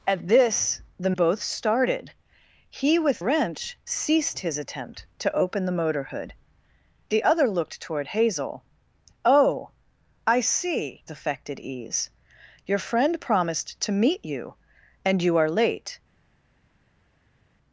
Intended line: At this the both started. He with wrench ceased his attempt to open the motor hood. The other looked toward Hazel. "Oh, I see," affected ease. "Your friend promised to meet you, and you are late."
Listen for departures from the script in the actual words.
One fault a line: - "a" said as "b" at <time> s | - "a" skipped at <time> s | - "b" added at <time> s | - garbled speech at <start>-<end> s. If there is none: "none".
none